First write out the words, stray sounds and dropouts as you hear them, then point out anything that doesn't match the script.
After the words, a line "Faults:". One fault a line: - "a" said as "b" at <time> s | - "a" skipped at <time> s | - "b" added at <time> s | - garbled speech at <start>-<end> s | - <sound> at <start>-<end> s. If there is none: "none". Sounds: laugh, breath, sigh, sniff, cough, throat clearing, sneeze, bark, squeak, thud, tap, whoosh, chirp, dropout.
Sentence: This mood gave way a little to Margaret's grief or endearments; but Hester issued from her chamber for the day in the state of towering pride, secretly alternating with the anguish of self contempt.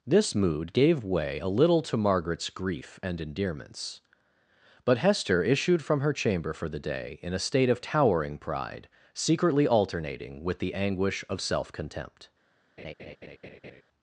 This mood gave way a little to Margaret's grief and endearments; but Hester issued from her chamber for the day in a state of towering pride, secretly alternating with the anguish of self contempt.
Faults:
- "or" said as "and" at 3.0 s
- "the" said as "a" at 7.3 s
- laugh at 12.8-13.8 s